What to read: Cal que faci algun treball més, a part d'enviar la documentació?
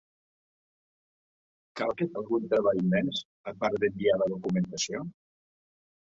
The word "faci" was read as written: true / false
false